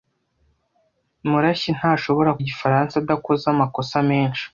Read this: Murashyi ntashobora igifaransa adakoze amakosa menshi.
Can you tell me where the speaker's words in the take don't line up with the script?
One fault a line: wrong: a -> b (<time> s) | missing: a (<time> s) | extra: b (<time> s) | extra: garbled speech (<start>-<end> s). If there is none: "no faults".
no faults